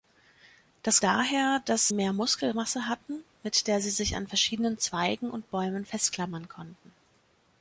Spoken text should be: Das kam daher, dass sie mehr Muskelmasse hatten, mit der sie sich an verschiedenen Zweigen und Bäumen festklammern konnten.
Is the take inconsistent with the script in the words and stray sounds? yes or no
yes